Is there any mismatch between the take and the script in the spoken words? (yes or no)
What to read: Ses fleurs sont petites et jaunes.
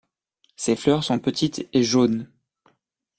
no